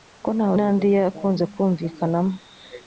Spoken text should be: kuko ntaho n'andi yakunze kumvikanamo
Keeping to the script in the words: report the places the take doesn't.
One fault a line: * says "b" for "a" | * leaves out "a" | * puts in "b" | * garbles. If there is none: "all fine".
all fine